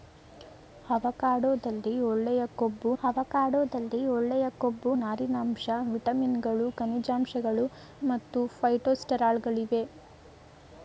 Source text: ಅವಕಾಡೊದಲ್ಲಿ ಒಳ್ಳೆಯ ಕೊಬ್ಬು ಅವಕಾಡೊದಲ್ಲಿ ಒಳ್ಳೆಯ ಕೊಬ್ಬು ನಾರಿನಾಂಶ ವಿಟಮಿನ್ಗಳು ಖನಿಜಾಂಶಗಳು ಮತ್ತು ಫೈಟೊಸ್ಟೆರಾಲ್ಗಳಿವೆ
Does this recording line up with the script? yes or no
yes